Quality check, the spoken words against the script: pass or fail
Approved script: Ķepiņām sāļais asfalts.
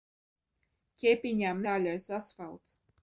pass